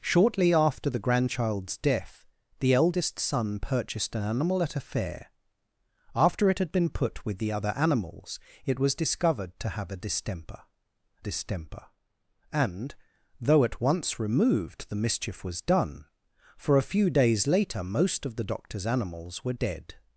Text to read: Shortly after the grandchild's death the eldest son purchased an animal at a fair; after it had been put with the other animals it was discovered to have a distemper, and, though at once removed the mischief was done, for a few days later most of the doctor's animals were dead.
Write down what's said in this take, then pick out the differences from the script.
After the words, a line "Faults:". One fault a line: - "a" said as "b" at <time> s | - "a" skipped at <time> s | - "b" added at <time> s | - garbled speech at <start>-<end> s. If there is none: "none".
Shortly after the grandchild's death the eldest son purchased an animal at a fair; after it had been put with the other animals it was discovered to have a distemper distemper, and, though at once removed the mischief was done, for a few days later most of the doctor's animals were dead.
Faults:
- "distemper" added at 11.2 s